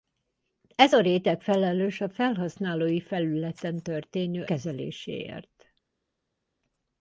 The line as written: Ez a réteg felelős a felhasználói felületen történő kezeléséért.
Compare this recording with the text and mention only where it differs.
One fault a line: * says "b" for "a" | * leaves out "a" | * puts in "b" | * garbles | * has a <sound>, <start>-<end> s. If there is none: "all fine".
all fine